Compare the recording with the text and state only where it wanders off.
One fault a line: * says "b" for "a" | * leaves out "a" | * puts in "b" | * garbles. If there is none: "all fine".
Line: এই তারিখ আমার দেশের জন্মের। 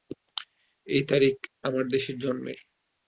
all fine